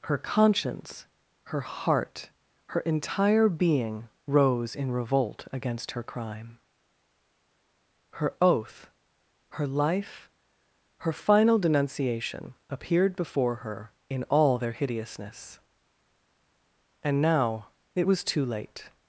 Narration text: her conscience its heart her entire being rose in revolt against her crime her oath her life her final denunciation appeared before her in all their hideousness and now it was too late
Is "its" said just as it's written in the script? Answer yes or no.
no